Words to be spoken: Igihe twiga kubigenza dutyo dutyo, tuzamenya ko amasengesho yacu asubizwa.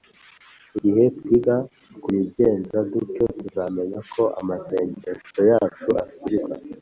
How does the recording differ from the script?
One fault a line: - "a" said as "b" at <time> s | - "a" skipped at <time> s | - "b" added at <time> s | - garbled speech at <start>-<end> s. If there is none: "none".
- "dutyo" skipped at 3.2 s